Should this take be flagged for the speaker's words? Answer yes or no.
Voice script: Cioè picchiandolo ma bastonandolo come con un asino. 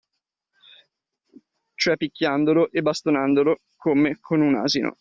yes